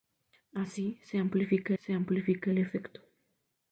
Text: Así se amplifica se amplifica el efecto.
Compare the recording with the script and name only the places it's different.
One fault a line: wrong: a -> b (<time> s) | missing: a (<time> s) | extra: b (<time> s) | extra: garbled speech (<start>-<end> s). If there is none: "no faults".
no faults